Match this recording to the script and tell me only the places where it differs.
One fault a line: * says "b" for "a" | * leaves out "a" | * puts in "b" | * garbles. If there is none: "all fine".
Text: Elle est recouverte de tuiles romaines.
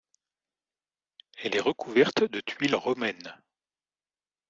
all fine